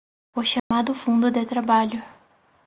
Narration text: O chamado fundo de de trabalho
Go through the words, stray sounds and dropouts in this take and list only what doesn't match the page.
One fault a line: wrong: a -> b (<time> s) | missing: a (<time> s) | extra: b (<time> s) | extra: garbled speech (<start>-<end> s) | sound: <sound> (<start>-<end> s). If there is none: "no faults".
sound: dropout (0.6-0.7 s)
missing: de (1.5 s)